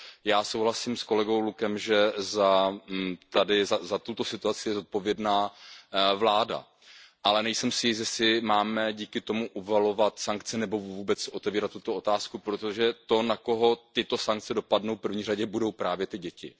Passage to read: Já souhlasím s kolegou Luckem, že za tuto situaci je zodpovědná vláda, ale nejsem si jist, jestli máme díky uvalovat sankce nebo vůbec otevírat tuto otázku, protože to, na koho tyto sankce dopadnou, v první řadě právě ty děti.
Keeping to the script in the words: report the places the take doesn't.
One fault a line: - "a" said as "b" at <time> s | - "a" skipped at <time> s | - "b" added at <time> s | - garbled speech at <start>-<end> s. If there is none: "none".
- "tomu" added at 9.2 s
- "budou" added at 15.4 s